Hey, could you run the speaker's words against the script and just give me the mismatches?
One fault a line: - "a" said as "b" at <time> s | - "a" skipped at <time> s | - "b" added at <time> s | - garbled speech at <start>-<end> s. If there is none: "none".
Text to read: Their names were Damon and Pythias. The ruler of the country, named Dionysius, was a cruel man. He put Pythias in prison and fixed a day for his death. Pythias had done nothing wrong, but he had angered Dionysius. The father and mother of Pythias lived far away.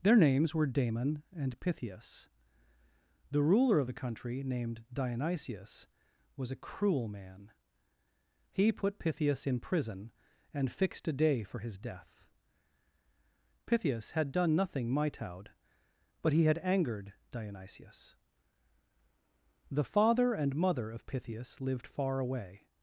- "wrong" said as "mitoud" at 14.9 s